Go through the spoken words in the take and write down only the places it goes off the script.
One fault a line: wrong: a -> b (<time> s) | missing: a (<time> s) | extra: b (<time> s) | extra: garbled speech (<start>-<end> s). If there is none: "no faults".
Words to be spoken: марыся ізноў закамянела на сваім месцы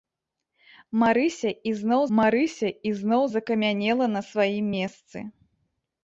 extra: марыся ізноў (2.2 s)